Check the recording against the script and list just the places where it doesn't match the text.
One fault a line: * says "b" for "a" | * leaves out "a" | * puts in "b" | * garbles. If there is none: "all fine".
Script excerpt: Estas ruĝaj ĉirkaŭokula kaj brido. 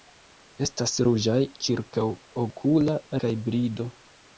all fine